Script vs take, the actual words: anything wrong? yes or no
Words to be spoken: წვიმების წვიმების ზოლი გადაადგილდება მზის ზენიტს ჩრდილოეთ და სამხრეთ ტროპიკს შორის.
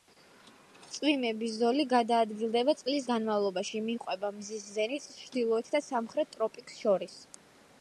yes